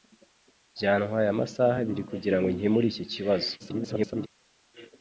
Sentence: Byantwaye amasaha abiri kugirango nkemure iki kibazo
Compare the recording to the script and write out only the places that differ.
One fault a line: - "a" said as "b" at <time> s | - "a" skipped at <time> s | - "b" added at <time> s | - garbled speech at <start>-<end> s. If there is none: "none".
- garbled speech at 3.6-4.3 s